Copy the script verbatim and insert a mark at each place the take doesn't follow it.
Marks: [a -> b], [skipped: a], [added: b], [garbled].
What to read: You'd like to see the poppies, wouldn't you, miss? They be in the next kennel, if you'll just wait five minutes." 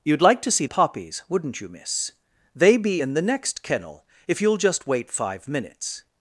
You'd like to see [skipped: the] poppies, wouldn't you, miss? They be in the next kennel, if you'll just wait five minutes."